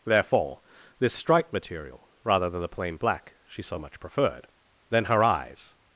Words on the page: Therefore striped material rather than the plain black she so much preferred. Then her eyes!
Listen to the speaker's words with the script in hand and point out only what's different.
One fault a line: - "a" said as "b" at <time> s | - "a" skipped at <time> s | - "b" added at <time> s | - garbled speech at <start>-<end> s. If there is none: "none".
- "this" added at 1.0 s